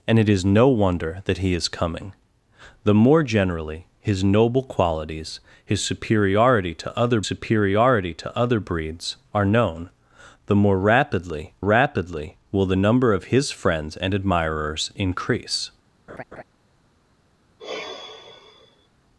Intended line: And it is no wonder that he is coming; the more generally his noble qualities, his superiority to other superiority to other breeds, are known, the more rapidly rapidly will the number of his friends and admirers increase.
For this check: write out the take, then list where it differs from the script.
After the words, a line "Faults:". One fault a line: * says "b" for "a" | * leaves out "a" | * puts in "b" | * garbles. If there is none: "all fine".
And it is no wonder that he is coming; the more generally his noble qualities, his superiority to other superiority to other breeds, are known, the more rapidly rapidly will the number of his friends and admirers increase.
Faults:
all fine